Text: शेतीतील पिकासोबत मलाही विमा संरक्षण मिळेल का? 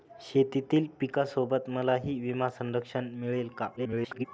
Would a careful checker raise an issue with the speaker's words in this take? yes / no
yes